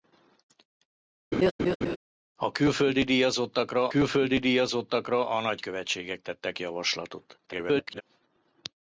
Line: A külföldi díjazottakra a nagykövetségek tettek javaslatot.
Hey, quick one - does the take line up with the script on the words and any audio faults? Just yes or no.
no